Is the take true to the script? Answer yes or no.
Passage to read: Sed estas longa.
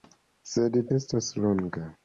yes